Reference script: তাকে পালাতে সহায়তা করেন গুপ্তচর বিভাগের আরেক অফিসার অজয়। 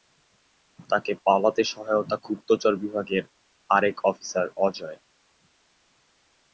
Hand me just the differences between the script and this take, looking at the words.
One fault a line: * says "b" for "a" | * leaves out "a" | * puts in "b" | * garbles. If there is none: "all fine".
* leaves out "করেন"